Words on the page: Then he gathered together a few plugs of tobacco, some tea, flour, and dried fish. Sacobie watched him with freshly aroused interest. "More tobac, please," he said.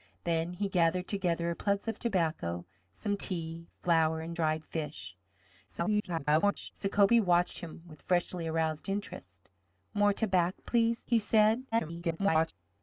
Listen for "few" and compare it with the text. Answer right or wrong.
wrong